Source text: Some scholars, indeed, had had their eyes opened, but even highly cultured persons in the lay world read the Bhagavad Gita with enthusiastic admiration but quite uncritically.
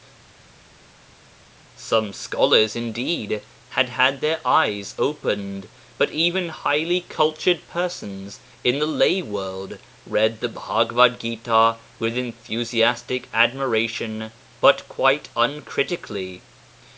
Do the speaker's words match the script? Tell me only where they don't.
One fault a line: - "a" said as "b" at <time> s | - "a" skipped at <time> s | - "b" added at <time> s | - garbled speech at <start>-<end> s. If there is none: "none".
none